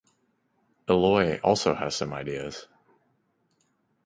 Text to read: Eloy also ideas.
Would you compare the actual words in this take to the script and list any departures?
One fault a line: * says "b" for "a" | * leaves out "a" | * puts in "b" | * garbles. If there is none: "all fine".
* puts in "has some"